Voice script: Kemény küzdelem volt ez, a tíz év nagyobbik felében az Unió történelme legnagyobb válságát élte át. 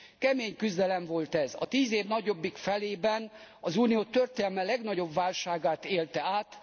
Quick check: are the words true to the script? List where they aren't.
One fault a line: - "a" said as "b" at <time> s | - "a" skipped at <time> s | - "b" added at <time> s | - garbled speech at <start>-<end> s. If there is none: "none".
none